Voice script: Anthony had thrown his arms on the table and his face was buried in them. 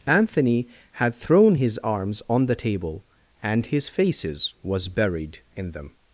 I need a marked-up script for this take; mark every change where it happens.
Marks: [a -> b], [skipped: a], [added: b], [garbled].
Anthony had thrown his arms on the table and his [face -> faces] was buried in them.